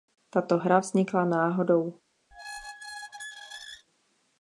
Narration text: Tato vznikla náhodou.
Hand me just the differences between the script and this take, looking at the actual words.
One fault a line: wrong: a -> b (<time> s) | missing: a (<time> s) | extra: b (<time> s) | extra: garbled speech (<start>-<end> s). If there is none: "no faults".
extra: hra (0.5 s)